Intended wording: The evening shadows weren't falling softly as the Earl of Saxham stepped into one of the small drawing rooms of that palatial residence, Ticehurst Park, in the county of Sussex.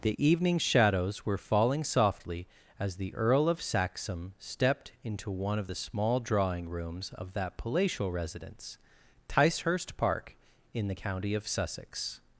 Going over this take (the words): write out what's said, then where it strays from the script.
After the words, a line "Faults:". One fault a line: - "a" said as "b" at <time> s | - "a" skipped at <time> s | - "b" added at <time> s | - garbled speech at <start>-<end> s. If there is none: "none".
The evening shadows were falling softly as the Earl of Saxham stepped into one of the small drawing rooms of that palatial residence, Ticehurst Park, in the county of Sussex.
Faults:
- "weren't" said as "were" at 1.2 s